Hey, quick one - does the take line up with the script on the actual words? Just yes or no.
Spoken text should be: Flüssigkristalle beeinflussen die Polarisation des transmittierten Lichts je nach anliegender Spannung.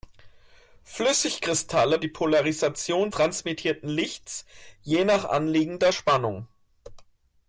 no